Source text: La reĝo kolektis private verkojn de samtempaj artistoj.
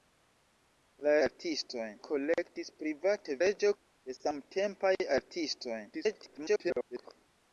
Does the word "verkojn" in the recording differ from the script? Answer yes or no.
yes